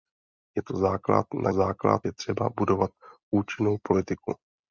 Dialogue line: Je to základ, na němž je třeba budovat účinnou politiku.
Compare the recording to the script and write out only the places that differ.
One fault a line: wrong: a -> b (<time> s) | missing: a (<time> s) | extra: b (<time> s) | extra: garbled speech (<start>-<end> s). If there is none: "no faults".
wrong: němž -> základ (1.5 s)